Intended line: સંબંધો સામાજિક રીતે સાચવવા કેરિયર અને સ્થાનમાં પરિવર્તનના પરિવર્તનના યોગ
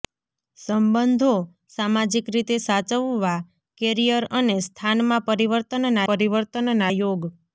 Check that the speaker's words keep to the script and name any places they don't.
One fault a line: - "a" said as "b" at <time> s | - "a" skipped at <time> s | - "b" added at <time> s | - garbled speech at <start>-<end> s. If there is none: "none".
none